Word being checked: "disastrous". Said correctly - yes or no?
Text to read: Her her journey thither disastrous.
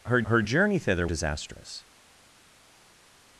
yes